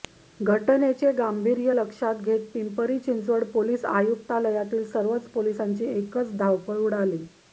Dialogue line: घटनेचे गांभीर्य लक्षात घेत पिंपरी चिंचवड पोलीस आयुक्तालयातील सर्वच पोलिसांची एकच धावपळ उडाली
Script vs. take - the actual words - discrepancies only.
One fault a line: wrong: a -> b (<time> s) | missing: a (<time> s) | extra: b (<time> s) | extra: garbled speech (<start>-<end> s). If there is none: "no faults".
no faults